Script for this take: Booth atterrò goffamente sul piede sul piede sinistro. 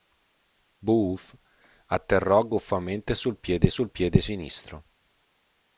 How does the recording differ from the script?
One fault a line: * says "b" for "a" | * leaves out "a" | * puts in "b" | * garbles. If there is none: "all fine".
all fine